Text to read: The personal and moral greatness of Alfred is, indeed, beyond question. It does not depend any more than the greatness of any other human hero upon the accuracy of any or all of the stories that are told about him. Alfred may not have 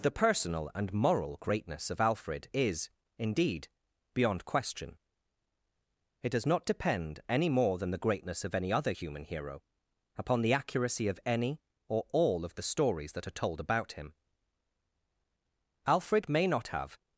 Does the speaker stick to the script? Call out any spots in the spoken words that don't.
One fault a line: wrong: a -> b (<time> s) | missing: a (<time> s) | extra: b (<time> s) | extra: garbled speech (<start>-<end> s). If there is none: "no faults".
no faults